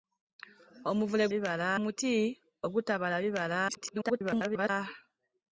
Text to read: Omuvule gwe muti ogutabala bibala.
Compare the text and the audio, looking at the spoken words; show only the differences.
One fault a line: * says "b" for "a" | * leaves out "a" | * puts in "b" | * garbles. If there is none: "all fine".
* says "bibala" for "gwe"
* garbles